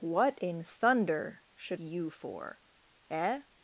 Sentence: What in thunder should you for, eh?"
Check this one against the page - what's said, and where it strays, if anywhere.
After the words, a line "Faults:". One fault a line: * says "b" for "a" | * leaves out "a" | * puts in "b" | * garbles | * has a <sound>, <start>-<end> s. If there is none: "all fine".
What in thunder should you for, eh?"
Faults:
all fine